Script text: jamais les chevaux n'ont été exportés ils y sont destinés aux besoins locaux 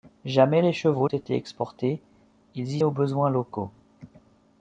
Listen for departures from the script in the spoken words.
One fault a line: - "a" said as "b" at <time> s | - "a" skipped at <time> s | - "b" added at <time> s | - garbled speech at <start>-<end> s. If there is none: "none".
- "n'ont" skipped at 1.1 s
- "sont destinés" skipped at 2.8 s